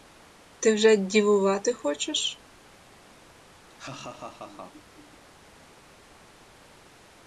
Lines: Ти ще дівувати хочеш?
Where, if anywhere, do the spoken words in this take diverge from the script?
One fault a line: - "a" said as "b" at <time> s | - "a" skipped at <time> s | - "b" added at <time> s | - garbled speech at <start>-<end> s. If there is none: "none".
- "ще" said as "вже" at 0.7 s